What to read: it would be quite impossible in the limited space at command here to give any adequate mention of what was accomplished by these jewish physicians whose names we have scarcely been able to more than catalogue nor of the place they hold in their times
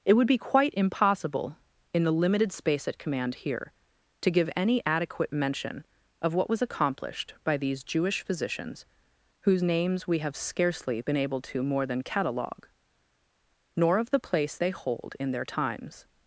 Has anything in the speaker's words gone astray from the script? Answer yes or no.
no